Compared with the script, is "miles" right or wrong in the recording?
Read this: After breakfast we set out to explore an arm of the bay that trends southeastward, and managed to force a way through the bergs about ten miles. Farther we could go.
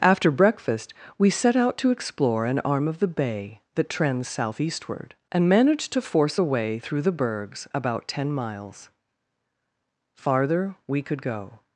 right